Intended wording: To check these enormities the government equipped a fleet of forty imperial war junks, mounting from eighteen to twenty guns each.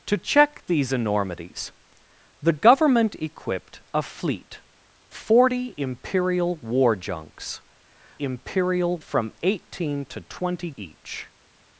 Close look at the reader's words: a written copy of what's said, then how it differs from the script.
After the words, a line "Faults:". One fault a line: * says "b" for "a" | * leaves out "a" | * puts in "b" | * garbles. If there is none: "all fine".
To check these enormities the government equipped a fleet forty imperial war junks, imperial from eighteen to twenty each.
Faults:
* leaves out "of"
* says "imperial" for "mounting"
* leaves out "guns"